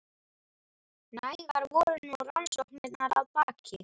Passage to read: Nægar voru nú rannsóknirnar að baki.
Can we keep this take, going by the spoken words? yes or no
yes